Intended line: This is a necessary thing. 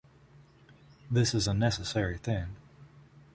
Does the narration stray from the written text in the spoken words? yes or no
no